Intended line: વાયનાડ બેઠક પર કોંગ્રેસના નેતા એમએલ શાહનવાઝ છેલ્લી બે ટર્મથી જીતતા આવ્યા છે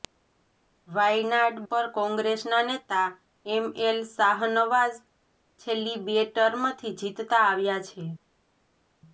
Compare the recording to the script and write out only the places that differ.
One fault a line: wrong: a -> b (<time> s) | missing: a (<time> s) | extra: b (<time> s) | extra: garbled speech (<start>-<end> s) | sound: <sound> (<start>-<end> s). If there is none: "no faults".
missing: બેઠક (1.6 s)